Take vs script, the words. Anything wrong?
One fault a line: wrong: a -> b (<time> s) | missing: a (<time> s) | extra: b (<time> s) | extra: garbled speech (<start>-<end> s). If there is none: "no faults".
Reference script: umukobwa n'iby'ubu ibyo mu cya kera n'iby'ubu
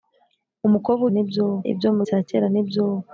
no faults